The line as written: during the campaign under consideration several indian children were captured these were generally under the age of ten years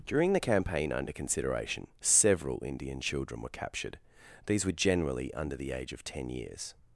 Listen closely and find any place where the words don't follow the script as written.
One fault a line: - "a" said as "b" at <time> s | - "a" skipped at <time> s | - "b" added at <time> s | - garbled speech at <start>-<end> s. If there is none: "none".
none